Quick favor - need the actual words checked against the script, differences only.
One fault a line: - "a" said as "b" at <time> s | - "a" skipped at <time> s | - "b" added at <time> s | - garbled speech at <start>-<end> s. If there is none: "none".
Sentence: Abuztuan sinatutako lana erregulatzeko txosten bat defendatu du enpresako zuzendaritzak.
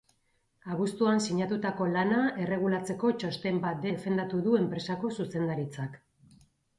none